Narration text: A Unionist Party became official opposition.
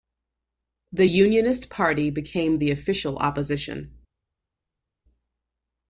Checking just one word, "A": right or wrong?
wrong